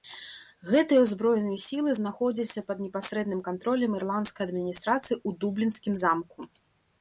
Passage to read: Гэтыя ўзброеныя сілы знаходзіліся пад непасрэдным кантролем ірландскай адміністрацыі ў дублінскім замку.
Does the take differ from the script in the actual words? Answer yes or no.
no